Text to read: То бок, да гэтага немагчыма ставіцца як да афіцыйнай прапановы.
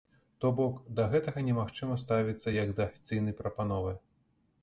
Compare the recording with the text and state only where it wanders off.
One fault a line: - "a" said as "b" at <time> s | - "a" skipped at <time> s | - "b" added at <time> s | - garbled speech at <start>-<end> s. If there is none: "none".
none